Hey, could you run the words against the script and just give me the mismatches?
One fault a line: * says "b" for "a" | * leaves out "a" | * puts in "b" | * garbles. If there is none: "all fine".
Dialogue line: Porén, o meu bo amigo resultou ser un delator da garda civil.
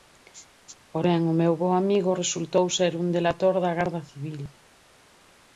all fine